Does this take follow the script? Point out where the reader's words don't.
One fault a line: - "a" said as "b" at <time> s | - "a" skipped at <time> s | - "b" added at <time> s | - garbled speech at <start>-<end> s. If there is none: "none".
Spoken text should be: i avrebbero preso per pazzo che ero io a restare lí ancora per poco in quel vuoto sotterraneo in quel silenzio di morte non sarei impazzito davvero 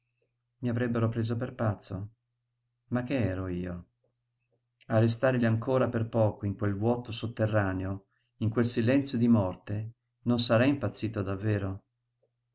- "ma" added at 2.9 s